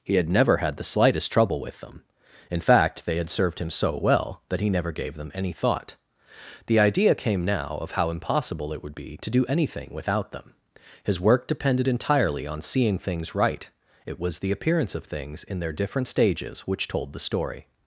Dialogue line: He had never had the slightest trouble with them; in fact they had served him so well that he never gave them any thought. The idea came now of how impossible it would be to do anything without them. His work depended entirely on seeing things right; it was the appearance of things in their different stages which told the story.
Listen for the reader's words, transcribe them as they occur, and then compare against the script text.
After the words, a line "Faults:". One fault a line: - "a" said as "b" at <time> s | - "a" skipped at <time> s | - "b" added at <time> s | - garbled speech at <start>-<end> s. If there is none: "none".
He had never had the slightest trouble with them; in fact they had served him so well that he never gave them any thought. The idea came now of how impossible it would be to do anything without them. His work depended entirely on seeing things right; it was the appearance of things in their different stages which told the story.
Faults:
none